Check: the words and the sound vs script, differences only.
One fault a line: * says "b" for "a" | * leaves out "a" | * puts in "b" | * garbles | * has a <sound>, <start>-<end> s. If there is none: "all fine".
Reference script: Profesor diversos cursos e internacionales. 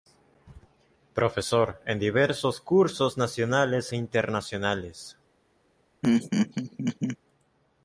* puts in "en"
* puts in "nacionales"
* has a laugh, 6.0-7.2 s